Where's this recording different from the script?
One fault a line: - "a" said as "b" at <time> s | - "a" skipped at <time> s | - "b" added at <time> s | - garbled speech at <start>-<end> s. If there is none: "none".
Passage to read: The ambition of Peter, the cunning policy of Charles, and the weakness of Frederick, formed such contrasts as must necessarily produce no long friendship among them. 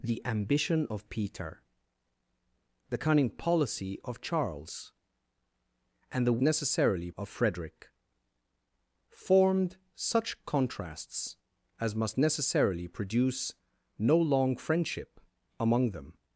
- "weakness" said as "necessarily" at 6.4 s